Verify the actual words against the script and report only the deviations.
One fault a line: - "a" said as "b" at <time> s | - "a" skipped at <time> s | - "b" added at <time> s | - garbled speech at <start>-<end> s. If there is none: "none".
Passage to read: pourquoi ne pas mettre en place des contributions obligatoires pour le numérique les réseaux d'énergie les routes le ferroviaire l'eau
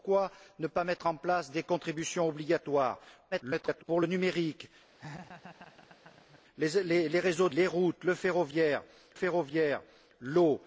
- garbled speech at 3.3-3.8 s
- "d'énergie" skipped at 7.5 s
- "ferroviaire" added at 9.1 s